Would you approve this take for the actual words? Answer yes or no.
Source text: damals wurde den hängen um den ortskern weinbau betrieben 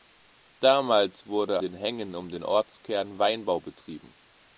yes